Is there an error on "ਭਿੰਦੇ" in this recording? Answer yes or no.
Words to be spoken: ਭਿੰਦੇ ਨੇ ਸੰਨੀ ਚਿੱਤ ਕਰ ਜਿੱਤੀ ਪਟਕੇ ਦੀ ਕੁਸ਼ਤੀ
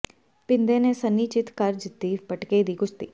no